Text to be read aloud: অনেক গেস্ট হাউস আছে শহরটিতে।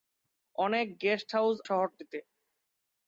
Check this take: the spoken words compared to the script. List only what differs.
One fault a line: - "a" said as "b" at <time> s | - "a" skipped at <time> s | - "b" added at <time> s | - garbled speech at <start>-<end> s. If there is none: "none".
- "আছে" skipped at 1.6 s